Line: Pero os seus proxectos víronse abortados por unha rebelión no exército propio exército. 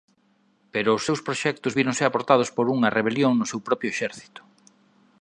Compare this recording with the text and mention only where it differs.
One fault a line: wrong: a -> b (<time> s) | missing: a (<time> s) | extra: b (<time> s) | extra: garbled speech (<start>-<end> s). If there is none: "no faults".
wrong: exército -> seu (3.5 s)